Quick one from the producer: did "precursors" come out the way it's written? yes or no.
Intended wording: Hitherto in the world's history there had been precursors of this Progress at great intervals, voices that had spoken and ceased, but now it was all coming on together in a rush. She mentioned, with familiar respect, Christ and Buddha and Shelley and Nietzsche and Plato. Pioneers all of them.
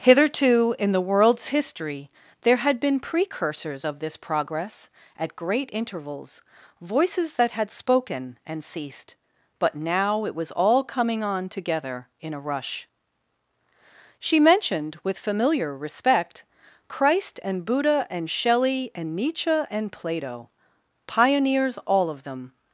yes